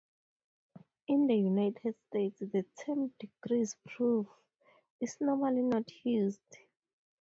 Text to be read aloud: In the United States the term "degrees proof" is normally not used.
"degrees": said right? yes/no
yes